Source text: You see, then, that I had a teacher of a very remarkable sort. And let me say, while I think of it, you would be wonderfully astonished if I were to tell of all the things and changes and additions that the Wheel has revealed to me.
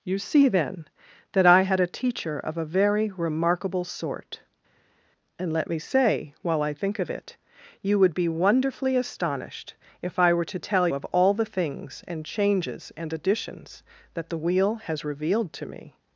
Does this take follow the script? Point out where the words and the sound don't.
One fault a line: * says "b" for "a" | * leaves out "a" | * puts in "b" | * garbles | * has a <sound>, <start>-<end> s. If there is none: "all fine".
all fine